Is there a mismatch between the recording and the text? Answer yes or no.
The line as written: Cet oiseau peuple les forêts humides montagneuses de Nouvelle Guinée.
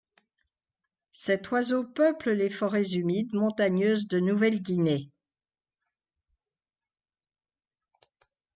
no